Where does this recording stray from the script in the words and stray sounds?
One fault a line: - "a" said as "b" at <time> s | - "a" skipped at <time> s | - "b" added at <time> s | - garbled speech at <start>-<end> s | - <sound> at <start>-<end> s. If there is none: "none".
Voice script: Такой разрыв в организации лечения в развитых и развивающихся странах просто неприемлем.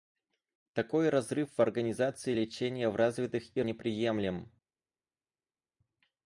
- "развивающихся странах просто" skipped at 3.6 s